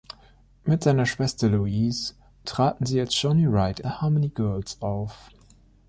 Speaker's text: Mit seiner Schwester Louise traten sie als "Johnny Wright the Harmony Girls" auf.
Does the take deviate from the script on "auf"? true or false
false